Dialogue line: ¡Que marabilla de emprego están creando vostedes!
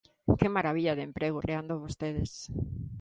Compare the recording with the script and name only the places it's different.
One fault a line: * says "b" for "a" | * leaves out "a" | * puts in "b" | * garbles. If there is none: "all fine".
* leaves out "están"